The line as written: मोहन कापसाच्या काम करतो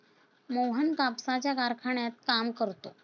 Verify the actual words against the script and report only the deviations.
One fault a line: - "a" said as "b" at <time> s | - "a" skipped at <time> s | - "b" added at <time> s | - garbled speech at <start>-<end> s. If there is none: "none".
- "कारखान्यात" added at 1.5 s